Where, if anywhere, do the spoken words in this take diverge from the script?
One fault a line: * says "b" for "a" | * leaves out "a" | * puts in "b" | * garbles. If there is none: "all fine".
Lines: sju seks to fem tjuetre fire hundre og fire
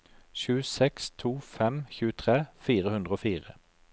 all fine